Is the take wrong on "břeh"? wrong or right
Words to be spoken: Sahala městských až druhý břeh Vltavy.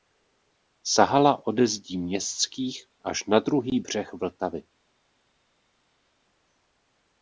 right